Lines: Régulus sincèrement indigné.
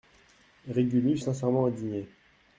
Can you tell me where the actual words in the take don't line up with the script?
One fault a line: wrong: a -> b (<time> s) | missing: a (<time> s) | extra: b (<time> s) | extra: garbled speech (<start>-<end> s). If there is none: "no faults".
no faults